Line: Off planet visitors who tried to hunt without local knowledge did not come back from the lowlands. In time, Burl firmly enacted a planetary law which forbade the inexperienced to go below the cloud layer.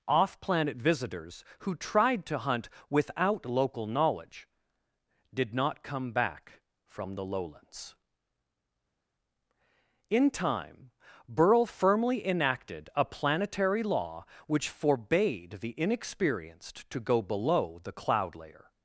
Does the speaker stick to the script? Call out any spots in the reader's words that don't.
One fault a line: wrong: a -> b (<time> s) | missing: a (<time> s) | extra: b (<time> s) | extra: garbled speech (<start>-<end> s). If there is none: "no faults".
no faults